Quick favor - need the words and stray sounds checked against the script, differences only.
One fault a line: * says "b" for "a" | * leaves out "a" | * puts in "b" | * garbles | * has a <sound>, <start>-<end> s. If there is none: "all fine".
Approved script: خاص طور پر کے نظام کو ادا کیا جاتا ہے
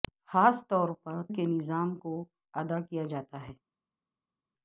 all fine